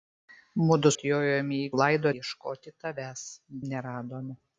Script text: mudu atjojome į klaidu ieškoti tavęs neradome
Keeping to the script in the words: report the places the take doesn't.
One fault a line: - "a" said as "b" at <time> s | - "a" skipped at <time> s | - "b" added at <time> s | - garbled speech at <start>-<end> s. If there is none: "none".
none